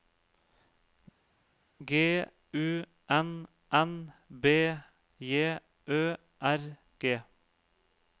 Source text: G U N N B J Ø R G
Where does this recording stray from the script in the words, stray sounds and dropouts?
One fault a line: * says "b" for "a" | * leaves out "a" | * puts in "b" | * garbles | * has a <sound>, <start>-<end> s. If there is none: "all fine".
all fine